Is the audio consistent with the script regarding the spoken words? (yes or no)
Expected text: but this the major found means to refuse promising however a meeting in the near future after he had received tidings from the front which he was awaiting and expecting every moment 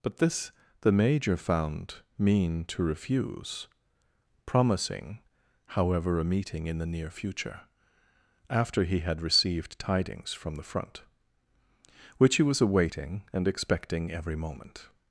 no